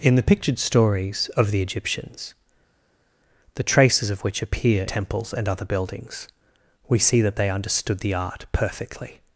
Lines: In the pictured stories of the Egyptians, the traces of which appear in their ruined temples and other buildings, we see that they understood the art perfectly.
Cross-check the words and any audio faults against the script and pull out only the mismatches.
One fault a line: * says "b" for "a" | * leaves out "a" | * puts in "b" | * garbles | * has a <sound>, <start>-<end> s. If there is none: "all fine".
* leaves out "in their ruined"